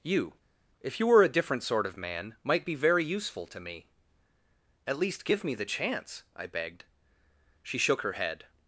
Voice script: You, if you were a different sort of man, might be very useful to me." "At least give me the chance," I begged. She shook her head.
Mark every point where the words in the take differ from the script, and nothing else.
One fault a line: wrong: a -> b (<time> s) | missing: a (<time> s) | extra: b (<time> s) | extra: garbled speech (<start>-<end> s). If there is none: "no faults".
no faults